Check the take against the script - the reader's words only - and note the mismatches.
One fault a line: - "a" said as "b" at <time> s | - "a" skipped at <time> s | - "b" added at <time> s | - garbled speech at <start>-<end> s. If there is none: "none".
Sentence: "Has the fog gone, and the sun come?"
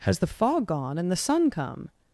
none